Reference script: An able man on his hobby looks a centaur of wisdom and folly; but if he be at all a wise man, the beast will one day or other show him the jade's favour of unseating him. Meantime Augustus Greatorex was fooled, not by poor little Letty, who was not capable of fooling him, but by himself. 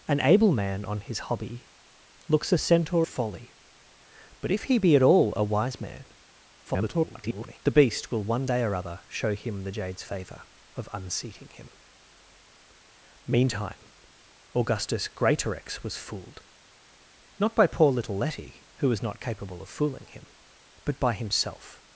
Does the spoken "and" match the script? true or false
false